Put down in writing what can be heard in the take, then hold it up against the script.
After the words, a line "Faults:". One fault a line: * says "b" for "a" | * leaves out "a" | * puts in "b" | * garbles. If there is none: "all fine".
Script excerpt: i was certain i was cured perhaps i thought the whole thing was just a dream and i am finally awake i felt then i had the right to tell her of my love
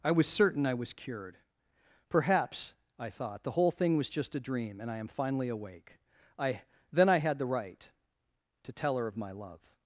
i was certain i was cured perhaps i thought the whole thing was just a dream and i am finally awake i then i had the right to tell her of my love
Faults:
* leaves out "felt"